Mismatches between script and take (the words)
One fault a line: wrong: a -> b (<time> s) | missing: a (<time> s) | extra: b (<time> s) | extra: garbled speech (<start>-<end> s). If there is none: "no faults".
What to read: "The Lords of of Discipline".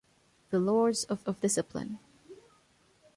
no faults